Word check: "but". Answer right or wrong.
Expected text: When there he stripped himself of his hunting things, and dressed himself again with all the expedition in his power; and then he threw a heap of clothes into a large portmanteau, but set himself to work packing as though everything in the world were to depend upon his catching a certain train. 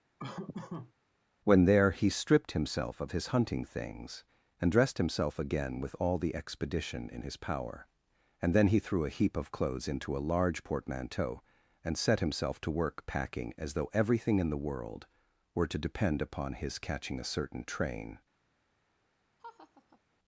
wrong